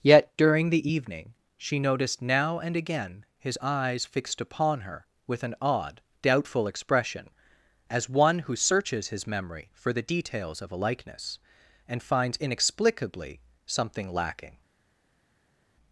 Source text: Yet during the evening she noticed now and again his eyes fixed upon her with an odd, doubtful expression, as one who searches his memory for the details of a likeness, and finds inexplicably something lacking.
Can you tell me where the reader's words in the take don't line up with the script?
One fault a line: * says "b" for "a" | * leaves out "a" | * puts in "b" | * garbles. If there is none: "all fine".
all fine